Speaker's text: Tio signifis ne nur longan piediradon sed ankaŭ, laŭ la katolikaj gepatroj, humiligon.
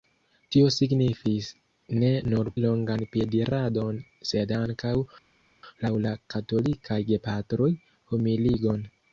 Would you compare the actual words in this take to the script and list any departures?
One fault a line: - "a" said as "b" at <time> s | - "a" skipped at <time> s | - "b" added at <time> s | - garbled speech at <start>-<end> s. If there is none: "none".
none